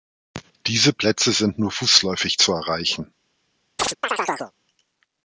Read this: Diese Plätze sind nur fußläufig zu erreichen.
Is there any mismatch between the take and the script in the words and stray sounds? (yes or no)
yes